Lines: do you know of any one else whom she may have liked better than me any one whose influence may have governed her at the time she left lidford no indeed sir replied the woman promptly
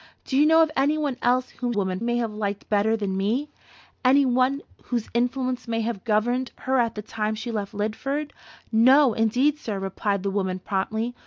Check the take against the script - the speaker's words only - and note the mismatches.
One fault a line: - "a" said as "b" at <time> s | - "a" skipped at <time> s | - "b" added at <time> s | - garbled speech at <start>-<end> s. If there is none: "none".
- "she" said as "woman" at 1.7 s